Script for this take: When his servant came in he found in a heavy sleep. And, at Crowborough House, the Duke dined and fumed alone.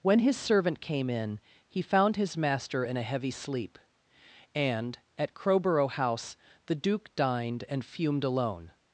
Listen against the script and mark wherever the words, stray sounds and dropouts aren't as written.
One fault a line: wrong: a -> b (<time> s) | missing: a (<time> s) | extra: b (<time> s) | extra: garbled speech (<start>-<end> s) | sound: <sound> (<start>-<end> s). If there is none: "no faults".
extra: his master (2.1 s)